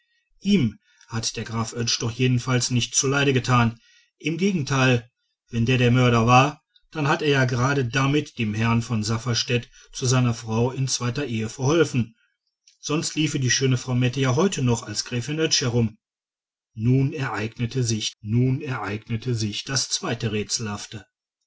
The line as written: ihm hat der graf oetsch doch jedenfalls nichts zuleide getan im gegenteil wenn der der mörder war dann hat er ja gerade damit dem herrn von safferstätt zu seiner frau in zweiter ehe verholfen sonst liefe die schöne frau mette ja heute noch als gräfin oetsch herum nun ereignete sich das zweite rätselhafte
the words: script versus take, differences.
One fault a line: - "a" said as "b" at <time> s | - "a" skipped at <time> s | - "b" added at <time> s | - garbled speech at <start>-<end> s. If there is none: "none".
- "nun ereignete sich" added at 18.2 s